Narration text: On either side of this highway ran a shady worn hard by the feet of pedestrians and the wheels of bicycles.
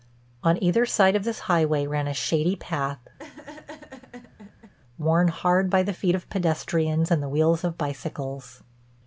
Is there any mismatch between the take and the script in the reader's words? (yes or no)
yes